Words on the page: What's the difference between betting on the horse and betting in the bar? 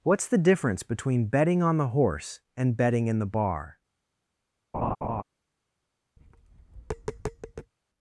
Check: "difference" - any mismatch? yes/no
no